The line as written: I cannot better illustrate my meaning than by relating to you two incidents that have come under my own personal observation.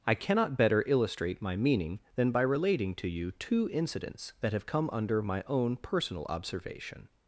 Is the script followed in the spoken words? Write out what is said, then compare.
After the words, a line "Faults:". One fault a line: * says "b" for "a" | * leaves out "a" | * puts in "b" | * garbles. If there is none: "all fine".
I cannot better illustrate my meaning than by relating to you two incidents that have come under my own personal observation.
Faults:
all fine